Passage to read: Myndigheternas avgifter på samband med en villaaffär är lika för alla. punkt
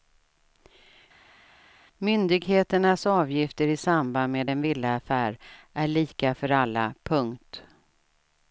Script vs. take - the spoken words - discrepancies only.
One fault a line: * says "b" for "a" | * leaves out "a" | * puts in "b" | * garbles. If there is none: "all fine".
* says "i" for "på"